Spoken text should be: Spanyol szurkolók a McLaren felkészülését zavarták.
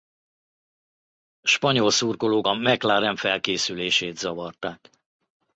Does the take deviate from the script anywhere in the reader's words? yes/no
no